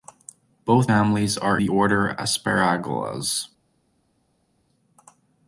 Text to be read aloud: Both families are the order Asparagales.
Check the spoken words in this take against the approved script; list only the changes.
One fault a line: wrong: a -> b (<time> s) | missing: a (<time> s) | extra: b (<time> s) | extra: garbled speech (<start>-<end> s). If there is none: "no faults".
no faults